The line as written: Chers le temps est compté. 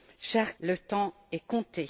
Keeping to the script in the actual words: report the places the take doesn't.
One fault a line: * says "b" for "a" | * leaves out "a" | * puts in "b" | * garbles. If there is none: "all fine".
all fine